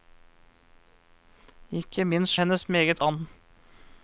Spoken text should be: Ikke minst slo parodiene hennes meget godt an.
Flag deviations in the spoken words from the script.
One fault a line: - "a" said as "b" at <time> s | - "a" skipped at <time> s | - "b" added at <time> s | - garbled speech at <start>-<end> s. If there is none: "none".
- "slo parodiene" skipped at 2.4 s
- "godt" skipped at 3.0 s